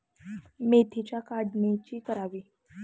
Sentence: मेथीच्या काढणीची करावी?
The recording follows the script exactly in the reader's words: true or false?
true